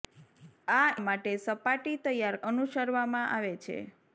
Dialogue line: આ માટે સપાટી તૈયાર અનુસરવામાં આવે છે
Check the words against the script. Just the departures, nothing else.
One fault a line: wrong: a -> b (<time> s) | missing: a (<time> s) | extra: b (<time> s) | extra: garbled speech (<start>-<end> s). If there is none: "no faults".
no faults